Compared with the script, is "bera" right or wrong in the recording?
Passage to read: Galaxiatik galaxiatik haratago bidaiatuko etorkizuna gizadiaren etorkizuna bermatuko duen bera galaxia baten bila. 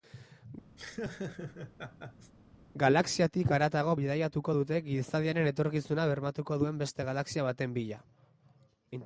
wrong